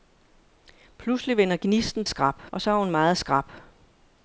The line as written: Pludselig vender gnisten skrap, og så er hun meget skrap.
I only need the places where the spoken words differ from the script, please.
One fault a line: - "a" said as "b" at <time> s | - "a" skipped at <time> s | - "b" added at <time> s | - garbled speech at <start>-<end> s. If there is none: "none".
none